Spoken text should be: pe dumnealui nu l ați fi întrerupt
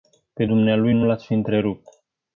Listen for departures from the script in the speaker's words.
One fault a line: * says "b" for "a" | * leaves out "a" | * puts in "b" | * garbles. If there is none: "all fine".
all fine